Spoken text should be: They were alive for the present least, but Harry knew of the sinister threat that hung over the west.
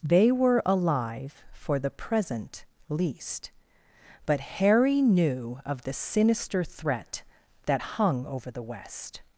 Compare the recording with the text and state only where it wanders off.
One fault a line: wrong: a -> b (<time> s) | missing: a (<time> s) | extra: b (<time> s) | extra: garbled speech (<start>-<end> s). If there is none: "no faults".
no faults